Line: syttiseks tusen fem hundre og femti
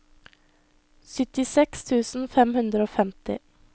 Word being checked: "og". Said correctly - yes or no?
yes